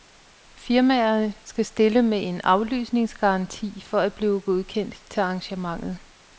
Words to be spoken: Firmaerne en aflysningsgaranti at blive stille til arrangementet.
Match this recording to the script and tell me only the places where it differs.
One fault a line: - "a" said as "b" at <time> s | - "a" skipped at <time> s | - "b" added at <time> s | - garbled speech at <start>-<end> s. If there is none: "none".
- "skal stille med" added at 1.4 s
- "for" added at 3.9 s
- "stille" said as "godkendt" at 4.4 s